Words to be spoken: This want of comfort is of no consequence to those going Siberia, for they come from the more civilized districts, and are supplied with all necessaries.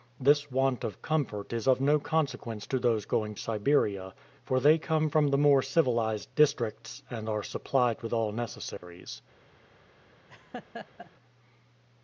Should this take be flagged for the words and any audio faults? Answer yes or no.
yes